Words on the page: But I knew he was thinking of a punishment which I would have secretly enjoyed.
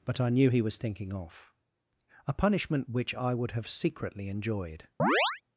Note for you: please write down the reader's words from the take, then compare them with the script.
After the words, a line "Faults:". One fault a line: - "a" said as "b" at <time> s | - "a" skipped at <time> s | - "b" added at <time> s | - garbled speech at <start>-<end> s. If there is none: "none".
But I knew he was thinking off a punishment which I would have secretly enjoyed.
Faults:
- "of" said as "off" at 1.1 s